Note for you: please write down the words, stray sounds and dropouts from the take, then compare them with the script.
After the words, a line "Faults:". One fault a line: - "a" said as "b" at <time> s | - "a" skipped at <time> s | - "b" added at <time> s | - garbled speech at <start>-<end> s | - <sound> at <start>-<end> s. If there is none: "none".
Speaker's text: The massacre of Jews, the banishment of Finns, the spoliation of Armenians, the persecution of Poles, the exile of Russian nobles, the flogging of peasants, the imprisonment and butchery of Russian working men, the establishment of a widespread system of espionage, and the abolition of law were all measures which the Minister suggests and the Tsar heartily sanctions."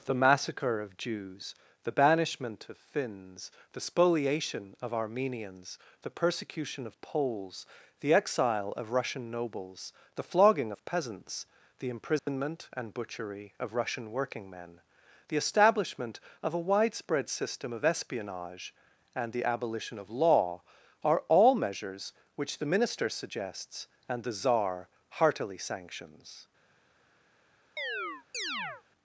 The massacre of Jews, the banishment of Finns, the spoliation of Armenians, the persecution of Poles, the exile of Russian nobles, the flogging of peasants, the imprisonment and butchery of Russian working men, the establishment of a widespread system of espionage, and the abolition of law are all measures which the Minister suggests and the Tsar heartily sanctions."
Faults:
- dropout at 12.2-12.3 s
- "were" said as "are" at 21.0 s
- chirp at 27.8-28.8 s